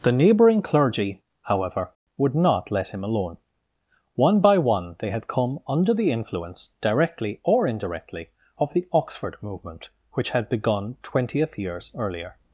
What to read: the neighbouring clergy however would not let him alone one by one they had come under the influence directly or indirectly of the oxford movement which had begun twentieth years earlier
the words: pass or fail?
pass